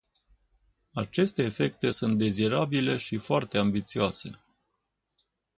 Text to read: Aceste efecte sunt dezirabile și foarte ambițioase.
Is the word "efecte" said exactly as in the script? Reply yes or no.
yes